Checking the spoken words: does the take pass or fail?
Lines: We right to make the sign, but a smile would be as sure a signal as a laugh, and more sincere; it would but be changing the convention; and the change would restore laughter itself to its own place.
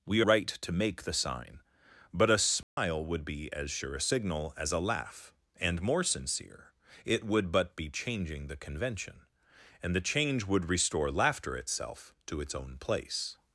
pass